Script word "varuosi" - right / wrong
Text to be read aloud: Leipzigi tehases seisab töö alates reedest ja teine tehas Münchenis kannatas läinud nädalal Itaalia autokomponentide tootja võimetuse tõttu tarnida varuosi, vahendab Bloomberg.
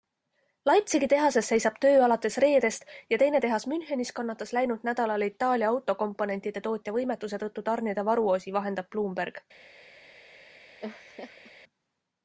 right